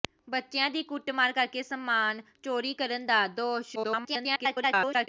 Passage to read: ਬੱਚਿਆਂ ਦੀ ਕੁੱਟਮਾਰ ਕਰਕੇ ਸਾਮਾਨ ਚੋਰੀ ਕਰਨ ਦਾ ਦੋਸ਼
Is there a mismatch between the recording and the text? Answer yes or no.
yes